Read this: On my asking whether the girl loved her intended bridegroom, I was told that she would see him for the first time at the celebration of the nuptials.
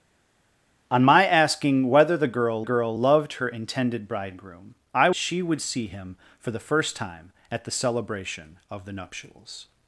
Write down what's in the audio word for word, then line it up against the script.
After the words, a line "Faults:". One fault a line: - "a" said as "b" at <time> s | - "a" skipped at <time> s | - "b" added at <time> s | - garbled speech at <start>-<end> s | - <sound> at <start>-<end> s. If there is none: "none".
On my asking whether the girl girl loved her intended bridegroom, I she would see him for the first time at the celebration of the nuptials.
Faults:
- "girl" added at 2.6 s
- "was told that" skipped at 5.1 s